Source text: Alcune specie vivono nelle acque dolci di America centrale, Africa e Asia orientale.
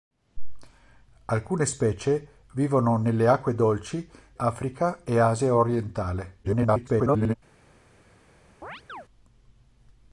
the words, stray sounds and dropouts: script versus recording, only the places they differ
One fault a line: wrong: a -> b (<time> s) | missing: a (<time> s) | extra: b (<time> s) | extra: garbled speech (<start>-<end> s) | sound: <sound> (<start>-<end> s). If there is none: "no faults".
missing: di America centrale (4.1 s)
extra: garbled speech (6.4-7.3 s)
sound: chirp (8.6-9.1 s)